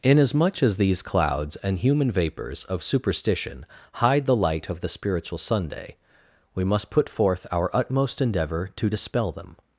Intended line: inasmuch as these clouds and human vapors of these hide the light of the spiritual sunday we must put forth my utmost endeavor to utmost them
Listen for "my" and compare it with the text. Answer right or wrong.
wrong